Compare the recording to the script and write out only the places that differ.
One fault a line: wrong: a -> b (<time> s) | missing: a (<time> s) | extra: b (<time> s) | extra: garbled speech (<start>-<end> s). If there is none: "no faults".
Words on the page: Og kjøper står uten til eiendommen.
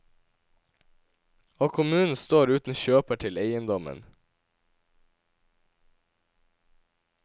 wrong: kjøper -> kommunen (1.7 s)
extra: kjøper (2.8 s)